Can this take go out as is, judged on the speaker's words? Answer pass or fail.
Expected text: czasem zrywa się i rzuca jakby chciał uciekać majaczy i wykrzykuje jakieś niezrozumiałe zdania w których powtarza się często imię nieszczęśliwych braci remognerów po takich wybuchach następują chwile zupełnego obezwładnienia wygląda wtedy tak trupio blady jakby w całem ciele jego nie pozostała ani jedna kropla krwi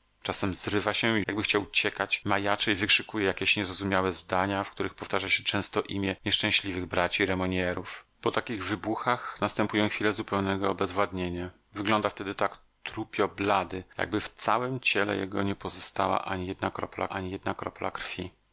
fail